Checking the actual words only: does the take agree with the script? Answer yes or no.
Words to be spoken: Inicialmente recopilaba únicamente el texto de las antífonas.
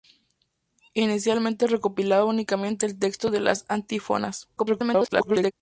no